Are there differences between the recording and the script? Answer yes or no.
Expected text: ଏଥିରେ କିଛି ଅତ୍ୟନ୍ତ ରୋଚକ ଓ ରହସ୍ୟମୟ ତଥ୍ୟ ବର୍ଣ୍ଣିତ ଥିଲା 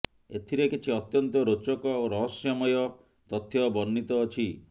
yes